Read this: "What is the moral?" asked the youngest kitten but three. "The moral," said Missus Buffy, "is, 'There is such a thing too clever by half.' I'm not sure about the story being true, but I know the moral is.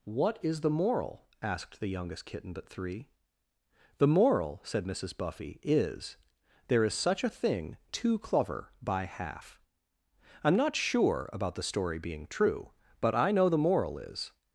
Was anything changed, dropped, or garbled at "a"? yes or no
no